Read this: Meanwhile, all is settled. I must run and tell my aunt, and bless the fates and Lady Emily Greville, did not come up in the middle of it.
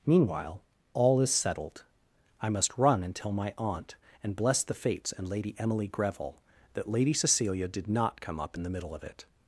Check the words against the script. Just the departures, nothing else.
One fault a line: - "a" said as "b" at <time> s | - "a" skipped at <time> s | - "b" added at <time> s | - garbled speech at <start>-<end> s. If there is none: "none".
- "that Lady Cecilia" added at 6.7 s